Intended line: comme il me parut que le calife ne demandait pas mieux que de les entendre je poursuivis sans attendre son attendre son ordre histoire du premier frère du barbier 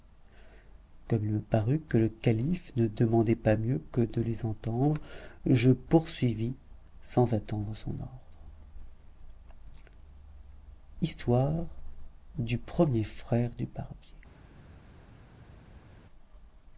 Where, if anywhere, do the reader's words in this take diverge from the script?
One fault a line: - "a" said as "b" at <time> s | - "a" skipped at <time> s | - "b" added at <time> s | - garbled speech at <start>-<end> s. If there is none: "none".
- "attendre son" skipped at 7.9 s